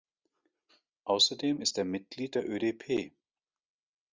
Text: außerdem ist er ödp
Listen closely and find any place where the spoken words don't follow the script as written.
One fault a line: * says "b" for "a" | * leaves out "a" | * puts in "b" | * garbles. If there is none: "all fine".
* puts in "mitglied der"